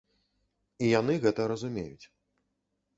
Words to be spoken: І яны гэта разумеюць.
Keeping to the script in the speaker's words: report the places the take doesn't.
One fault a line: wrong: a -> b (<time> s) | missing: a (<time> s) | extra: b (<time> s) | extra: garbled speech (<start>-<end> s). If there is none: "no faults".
no faults